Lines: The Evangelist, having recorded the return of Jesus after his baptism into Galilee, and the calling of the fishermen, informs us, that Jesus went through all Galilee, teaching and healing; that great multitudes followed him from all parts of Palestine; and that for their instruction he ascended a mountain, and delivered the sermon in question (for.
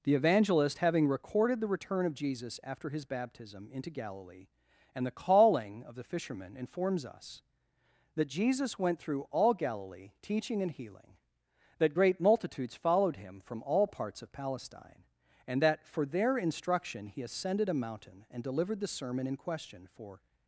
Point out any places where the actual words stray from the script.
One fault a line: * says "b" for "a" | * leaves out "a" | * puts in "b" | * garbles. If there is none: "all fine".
all fine